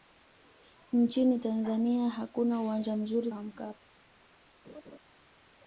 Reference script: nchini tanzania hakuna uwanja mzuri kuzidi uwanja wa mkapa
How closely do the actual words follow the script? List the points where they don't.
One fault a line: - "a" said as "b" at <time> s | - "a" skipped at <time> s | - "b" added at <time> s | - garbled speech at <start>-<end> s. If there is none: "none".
- "kuzidi uwanja" skipped at 3.3 s